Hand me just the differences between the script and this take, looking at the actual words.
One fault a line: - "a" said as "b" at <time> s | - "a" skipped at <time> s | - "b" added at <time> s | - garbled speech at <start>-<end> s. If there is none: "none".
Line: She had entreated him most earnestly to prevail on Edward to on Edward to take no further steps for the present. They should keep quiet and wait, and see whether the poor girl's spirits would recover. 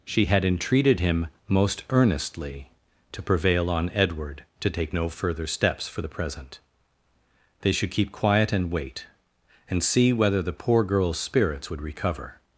- "on Edward to" skipped at 4.7 s